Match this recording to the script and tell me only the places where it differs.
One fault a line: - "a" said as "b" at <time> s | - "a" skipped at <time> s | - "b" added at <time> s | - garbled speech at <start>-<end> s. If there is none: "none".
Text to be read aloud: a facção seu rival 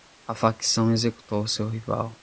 - "executou" added at 0.9 s